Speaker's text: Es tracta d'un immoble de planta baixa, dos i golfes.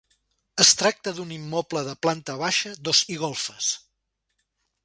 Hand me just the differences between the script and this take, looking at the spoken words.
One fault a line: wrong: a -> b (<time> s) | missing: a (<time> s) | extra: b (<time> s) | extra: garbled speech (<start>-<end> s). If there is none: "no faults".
no faults